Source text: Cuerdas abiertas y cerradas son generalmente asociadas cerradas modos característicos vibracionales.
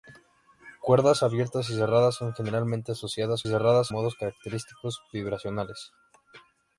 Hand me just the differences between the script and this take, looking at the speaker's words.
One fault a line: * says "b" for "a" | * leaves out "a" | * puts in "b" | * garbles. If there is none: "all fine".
all fine